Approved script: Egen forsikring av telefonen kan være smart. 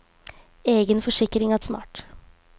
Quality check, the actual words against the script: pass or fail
fail